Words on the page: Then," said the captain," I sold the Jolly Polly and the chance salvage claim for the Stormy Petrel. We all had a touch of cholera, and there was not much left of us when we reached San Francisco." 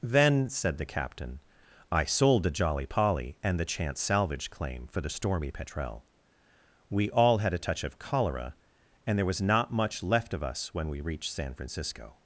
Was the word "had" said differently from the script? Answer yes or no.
no